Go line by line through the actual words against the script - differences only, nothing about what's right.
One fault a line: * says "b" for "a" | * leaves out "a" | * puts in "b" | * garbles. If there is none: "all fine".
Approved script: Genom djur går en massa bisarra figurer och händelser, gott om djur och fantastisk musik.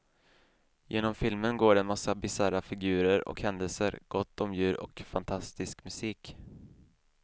* says "filmen" for "djur"